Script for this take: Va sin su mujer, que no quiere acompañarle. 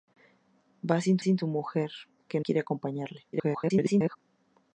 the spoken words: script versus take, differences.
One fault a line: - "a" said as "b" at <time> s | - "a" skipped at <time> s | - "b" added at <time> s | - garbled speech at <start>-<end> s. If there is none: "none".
- "sin" added at 1.2 s
- "no" skipped at 2.4 s
- garbled speech at 3.3-4.2 s